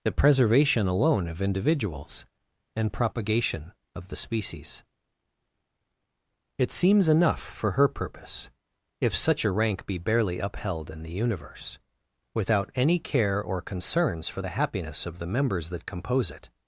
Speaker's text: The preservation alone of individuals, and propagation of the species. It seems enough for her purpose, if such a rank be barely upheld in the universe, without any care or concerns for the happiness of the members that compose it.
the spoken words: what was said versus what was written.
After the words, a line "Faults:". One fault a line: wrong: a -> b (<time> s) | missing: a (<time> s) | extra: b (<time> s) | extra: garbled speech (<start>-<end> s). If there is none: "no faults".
The preservation alone of individuals, and propagation of the species. It seems enough for her purpose, if such a rank be barely upheld in the universe, without any care or concerns for the happiness of the members that compose it.
Faults:
no faults